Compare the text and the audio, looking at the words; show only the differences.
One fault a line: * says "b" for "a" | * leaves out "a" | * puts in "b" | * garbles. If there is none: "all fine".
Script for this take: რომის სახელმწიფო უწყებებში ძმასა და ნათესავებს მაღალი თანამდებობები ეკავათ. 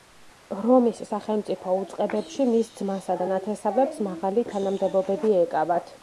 * puts in "მის"